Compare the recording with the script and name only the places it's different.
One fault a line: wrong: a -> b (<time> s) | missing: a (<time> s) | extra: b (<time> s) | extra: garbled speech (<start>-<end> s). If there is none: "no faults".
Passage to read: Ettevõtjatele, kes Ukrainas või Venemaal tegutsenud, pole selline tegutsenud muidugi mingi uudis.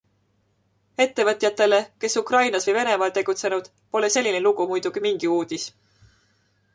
wrong: tegutsenud -> lugu (4.5 s)